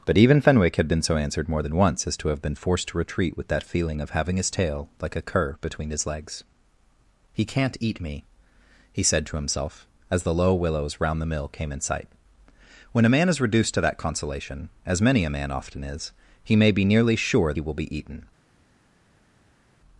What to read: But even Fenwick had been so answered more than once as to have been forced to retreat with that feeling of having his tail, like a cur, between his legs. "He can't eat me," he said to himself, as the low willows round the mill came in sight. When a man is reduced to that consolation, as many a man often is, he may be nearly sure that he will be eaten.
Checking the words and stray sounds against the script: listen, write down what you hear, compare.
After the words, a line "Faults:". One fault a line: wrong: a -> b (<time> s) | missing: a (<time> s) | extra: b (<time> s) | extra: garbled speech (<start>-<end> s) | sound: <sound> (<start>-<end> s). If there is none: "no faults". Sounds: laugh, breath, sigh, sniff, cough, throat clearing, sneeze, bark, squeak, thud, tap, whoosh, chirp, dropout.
But even Fenwick had been so answered more than once as to have been forced to retreat with that feeling of having his tail, like a cur, between his legs. "He can't eat me," he said to himself, as the low willows round the mill came in sight. When a man is reduced to that consolation, as many a man often is, he may be nearly sure he will be eaten.
Faults:
missing: that (17.5 s)